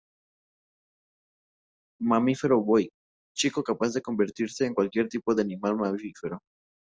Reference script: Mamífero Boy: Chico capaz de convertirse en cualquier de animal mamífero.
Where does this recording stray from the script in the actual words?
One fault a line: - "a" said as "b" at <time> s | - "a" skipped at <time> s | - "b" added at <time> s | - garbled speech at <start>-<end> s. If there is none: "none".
- "tipo" added at 5.1 s